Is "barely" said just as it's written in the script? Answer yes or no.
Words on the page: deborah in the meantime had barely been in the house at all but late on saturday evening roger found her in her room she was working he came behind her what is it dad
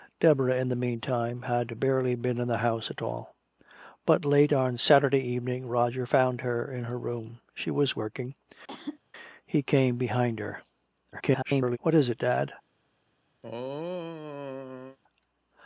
yes